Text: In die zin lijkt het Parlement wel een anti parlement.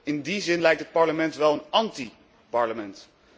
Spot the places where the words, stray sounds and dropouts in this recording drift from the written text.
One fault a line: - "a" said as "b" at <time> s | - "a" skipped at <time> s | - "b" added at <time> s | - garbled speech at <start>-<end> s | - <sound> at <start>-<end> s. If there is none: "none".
none